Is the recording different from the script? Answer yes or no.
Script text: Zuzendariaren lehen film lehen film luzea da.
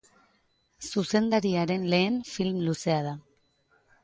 yes